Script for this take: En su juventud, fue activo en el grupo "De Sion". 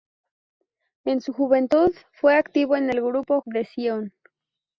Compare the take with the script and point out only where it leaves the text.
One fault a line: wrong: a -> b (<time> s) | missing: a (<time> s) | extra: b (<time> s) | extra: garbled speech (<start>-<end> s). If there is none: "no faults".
no faults